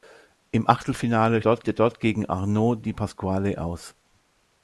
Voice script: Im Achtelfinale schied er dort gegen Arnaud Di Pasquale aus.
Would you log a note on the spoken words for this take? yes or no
yes